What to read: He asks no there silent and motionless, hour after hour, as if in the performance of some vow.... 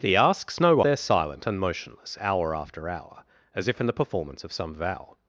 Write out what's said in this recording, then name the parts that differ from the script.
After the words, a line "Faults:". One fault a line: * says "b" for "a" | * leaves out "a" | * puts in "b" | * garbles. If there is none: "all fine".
He asks no there silent and motionless, hour after hour, as if in the performance of some vow....
Faults:
all fine